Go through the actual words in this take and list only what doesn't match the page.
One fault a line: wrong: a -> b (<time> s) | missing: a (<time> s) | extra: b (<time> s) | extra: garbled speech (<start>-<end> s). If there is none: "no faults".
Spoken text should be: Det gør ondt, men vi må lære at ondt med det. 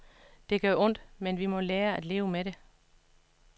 wrong: ondt -> leve (2.0 s)